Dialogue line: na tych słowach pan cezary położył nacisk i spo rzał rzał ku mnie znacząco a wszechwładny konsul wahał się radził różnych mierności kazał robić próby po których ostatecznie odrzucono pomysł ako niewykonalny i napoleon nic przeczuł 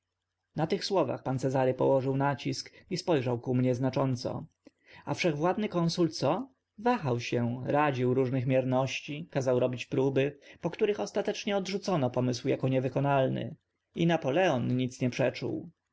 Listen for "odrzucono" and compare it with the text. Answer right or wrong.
right